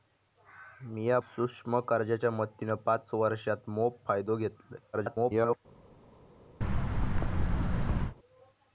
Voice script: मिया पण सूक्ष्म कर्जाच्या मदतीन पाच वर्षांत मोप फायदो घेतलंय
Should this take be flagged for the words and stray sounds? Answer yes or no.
yes